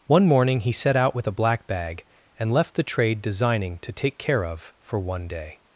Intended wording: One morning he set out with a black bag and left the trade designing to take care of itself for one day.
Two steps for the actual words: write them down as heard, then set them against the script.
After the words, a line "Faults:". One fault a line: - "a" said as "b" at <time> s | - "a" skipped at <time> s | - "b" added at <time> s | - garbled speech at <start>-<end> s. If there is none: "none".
One morning he set out with a black bag and left the trade designing to take care of for one day.
Faults:
- "itself" skipped at 4.7 s